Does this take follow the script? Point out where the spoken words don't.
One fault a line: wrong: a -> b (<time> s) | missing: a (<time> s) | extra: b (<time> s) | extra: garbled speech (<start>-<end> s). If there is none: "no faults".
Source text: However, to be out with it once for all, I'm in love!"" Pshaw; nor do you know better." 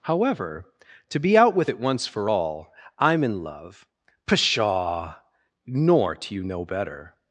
no faults